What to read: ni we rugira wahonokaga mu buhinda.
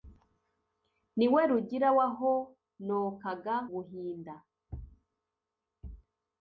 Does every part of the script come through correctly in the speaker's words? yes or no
no